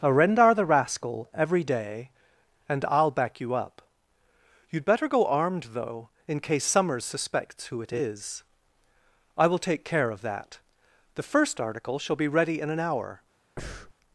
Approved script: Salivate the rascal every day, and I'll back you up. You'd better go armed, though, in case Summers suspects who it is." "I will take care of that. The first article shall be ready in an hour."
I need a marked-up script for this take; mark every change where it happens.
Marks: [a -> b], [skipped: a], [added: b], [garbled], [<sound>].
[Salivate -> Arendar] the rascal every day, and I'll back you up. You'd better go armed, though, in case Summers suspects who it is." "I will take care of that. The first article shall be ready in an hour." [breath]